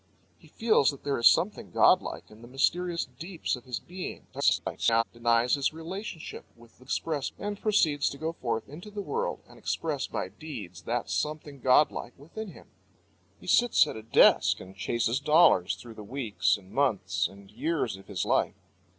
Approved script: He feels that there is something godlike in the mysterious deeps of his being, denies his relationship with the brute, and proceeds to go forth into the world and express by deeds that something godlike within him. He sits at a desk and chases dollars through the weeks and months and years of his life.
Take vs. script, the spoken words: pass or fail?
fail